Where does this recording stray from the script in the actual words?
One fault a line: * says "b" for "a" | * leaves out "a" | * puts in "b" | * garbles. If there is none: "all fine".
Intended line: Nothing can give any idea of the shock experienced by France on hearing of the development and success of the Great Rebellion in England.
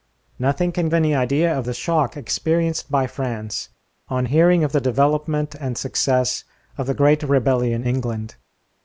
* leaves out "give"
* leaves out "in"